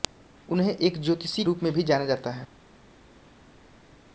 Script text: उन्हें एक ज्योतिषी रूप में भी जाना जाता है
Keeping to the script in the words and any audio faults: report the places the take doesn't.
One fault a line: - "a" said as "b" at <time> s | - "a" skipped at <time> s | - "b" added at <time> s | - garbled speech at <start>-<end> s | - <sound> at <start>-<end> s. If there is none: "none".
none